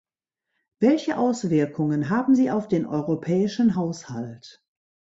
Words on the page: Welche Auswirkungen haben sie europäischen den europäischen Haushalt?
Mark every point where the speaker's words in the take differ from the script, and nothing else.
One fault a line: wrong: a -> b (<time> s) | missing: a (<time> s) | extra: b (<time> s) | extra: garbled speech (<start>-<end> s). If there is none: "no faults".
wrong: europäischen -> auf (2.5 s)